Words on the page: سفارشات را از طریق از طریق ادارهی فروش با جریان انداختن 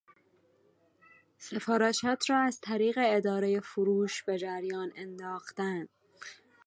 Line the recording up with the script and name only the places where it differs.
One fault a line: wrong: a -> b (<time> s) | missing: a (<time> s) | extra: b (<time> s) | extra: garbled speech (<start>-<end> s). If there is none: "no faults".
missing: از طریق (3.0 s)
wrong: با -> به (4.2 s)